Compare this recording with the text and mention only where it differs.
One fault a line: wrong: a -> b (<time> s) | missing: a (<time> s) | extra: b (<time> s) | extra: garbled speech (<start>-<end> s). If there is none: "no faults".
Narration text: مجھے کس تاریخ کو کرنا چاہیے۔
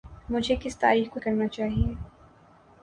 no faults